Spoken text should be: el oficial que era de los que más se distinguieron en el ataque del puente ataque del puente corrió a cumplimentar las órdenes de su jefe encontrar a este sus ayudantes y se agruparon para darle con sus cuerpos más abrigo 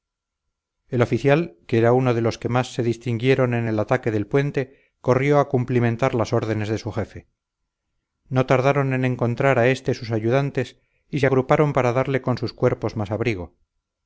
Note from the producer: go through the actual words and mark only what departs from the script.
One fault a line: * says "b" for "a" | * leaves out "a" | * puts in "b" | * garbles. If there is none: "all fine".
* puts in "uno"
* leaves out "ataque del puente"
* puts in "no tardaron en"